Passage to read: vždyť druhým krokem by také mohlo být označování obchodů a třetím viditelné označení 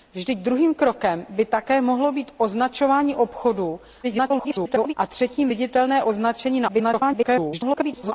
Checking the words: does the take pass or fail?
fail